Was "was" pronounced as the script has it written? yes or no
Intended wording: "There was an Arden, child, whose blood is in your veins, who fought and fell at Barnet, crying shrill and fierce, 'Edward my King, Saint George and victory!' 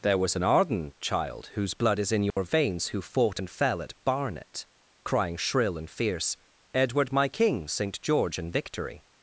yes